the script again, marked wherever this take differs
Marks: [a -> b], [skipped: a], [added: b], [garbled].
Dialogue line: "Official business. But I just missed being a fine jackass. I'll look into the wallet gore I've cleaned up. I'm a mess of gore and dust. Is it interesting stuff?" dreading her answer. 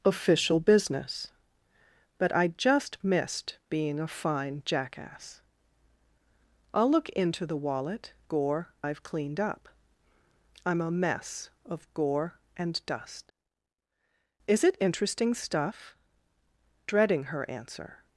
"Official business. But I just missed being a fine jackass. I'll look into the wallet gore I've cleaned up. I'm a mess of gore and dust. Is it interesting stuff?" dreading her answer.